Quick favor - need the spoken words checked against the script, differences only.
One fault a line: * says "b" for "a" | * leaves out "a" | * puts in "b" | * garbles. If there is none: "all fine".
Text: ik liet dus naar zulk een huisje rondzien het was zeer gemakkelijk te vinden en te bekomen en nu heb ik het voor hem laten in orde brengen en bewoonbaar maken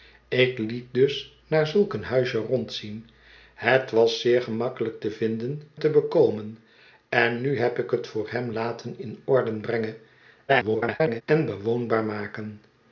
* leaves out "en"
* garbles